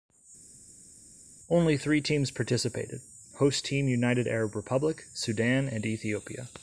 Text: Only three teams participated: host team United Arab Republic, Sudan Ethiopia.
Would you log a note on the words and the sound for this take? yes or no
yes